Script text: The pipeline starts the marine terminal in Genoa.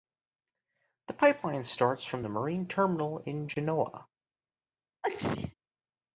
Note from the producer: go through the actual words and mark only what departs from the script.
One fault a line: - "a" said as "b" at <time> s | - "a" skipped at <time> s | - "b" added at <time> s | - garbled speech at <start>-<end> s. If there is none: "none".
- "from" added at 2.0 s